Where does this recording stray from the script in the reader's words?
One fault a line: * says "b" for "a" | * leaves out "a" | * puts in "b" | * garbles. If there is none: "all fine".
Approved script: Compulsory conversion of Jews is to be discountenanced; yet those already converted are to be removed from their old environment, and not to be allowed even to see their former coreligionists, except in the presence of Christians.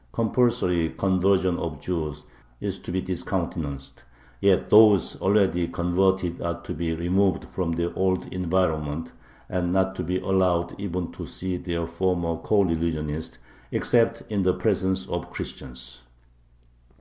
all fine